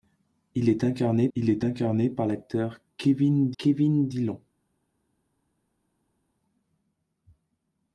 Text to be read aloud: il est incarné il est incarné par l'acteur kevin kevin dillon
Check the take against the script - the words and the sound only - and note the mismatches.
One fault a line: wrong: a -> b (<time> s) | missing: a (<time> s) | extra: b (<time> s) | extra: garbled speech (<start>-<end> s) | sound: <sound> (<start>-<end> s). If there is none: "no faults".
no faults